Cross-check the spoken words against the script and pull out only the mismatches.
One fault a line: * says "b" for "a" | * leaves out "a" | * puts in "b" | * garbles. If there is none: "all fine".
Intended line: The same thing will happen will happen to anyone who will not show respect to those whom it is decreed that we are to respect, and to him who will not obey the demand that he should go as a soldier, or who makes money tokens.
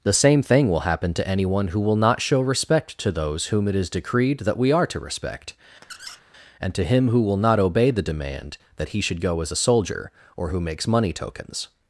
* leaves out "will happen"